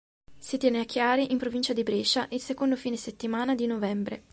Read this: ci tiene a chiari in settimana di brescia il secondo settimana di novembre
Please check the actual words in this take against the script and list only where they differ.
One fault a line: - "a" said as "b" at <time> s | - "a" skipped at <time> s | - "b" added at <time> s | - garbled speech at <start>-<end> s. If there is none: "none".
- "ci" said as "si" at 0.4 s
- "settimana" said as "provincia" at 1.4 s
- "fine" added at 2.8 s